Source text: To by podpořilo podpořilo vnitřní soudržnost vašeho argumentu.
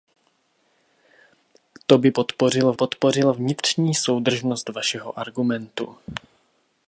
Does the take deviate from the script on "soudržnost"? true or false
false